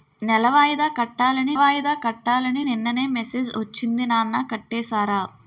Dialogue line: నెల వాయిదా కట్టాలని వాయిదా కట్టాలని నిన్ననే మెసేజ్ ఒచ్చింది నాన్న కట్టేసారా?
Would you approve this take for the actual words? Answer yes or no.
yes